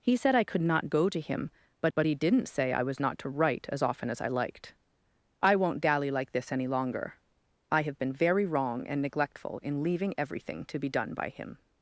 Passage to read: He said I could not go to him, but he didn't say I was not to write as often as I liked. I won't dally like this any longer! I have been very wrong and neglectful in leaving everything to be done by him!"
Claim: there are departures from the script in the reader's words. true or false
true